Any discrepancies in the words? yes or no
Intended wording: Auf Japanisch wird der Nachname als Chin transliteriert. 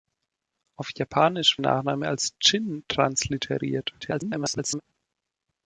yes